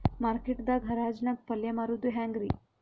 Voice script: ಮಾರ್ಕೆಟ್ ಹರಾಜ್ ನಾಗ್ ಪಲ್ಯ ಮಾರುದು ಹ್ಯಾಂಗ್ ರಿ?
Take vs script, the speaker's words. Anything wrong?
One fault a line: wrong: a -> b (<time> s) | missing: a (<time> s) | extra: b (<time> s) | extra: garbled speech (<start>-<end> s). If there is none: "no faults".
extra: ದಾಗ್ (0.7 s)